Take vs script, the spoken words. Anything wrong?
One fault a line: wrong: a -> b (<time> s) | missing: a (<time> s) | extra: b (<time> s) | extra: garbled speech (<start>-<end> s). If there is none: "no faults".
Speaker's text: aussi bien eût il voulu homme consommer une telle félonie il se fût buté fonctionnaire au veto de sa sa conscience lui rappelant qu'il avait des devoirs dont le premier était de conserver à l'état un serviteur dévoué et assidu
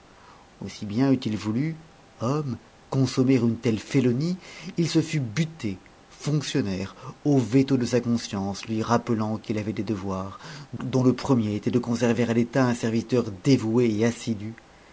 missing: sa (8.0 s)